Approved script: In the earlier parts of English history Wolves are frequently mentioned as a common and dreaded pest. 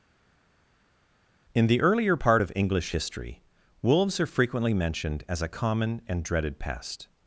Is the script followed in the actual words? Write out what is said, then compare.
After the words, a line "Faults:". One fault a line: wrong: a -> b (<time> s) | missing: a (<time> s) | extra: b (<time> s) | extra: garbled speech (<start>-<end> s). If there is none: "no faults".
In the earlier part of English history Wolves are frequently mentioned as a common and dreaded pest.
Faults:
wrong: parts -> part (2.1 s)